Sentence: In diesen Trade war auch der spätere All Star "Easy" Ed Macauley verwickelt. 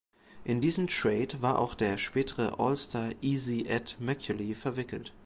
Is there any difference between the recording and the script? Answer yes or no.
no